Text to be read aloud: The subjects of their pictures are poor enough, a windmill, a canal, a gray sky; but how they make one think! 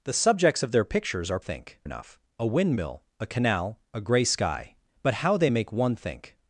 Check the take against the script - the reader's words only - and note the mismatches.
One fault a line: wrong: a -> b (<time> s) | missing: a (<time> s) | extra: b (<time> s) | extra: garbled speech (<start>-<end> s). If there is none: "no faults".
wrong: poor -> think (1.4 s)